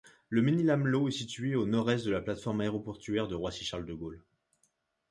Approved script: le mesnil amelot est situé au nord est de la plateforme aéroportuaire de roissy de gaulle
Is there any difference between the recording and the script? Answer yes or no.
yes